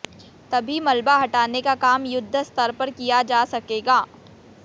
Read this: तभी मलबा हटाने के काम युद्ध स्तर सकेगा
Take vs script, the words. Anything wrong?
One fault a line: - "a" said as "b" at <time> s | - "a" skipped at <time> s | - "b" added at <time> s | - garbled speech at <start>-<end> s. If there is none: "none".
- "के" said as "का" at 1.6 s
- "पर किया जा" added at 2.8 s